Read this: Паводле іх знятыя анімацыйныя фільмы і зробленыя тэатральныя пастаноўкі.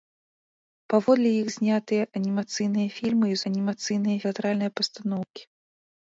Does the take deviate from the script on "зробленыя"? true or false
true